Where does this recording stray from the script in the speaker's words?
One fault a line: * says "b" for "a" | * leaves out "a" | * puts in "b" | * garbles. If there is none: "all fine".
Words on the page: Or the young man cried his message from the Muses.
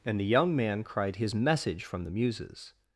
* says "And" for "Or"